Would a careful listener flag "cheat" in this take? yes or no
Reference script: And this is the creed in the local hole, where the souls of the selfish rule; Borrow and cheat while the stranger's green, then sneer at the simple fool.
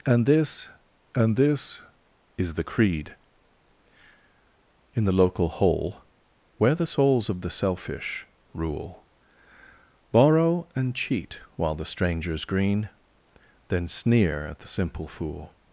no